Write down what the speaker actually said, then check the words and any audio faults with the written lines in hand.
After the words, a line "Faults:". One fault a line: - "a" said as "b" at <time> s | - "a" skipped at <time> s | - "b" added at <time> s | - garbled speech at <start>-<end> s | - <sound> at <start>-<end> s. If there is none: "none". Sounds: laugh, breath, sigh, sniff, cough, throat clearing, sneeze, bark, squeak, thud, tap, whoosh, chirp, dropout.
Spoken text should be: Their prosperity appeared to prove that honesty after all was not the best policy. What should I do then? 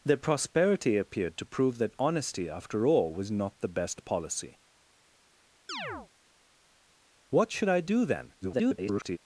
Their prosperity appeared to prove that honesty after all was not the best policy. What should I do then? [garbled]
Faults:
- chirp at 5.7-6.1 s
- garbled speech at 8.4-9.2 s